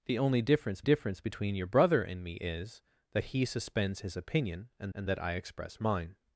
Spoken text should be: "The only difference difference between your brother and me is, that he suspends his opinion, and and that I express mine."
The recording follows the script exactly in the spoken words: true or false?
true